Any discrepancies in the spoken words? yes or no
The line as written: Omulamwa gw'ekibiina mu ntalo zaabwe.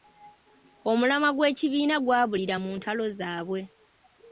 yes